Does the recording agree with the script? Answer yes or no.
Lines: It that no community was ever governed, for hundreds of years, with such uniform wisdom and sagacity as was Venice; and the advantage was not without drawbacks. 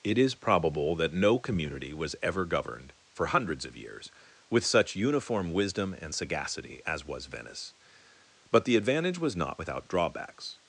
no